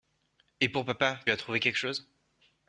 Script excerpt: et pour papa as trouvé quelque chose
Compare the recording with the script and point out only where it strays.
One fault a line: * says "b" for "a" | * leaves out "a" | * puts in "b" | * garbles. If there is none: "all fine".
all fine